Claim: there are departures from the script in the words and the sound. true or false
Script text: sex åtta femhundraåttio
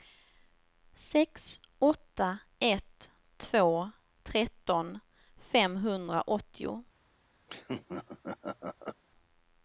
true